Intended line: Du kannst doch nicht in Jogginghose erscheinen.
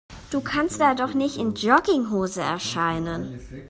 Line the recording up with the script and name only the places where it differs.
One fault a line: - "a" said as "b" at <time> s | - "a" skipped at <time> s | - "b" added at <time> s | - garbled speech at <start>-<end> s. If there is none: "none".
- "da" added at 0.8 s